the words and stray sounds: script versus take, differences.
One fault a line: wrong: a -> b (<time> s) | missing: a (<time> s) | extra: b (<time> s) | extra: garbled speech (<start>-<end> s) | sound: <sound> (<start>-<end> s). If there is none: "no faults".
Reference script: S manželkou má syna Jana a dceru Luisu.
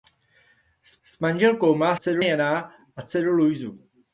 extra: s (1.0 s)
wrong: syna -> dceru (1.9 s)